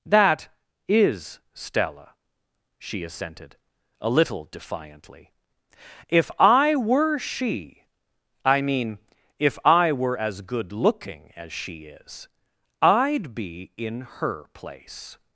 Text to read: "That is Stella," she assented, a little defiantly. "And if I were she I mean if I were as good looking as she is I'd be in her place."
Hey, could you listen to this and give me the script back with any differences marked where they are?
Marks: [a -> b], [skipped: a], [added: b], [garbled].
"That is Stella," she assented, a little defiantly. [skipped: "And] if I were she I mean if I were as good looking as she is I'd be in her place."